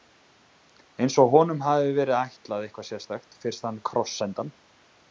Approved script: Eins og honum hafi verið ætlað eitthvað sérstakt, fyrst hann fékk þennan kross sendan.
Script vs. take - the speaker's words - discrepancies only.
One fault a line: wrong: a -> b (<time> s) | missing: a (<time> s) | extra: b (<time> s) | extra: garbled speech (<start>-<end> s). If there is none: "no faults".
missing: fékk þennan (3.8 s)